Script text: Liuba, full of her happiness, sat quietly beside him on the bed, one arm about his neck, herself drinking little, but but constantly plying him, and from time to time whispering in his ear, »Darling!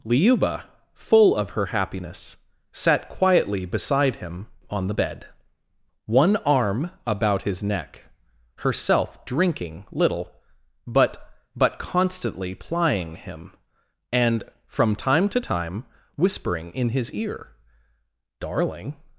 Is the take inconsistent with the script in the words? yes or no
no